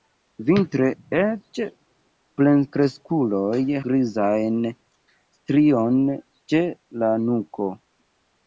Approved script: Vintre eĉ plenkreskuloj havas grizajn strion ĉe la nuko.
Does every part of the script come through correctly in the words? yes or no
no